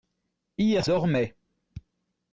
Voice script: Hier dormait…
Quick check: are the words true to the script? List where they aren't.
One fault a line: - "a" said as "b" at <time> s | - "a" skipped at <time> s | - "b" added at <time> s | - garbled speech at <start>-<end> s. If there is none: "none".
none